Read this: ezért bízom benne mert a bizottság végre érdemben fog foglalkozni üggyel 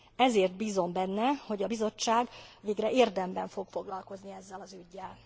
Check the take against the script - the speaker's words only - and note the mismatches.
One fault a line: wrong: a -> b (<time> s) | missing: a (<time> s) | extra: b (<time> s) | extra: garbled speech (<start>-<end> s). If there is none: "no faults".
wrong: mert -> hogy (1.5 s)
extra: ezzel az (4.3 s)